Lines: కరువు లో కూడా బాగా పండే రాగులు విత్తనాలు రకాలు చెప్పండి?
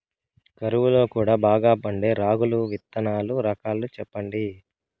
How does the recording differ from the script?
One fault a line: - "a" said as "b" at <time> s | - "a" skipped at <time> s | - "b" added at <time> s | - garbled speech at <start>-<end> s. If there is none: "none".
none